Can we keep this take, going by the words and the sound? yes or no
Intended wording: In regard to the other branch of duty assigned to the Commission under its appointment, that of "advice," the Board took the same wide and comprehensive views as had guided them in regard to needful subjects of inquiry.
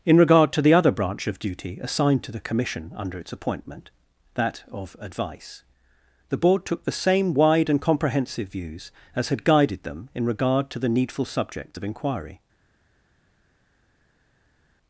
no